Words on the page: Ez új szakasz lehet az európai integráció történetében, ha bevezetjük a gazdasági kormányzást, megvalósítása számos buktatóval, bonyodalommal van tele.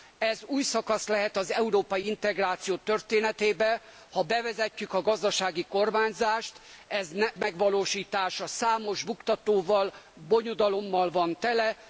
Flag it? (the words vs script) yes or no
no